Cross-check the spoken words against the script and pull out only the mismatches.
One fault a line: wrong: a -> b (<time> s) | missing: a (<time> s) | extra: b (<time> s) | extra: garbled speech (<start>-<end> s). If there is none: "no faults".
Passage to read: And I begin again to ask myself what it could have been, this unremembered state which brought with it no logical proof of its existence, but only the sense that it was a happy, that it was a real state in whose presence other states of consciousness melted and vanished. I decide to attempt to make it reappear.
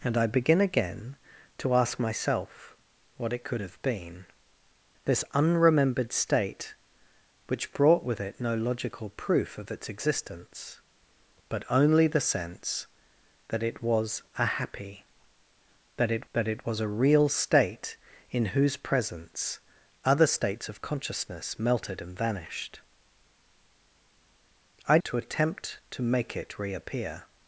extra: that it (16.3 s)
missing: decide (25.0 s)